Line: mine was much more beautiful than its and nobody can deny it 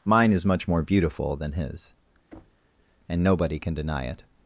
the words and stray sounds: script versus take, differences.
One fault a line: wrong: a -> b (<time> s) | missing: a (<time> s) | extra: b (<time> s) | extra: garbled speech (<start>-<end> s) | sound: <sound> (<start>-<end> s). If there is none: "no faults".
wrong: was -> is (0.3 s)
wrong: its -> his (1.5 s)
sound: thud (2.3-2.7 s)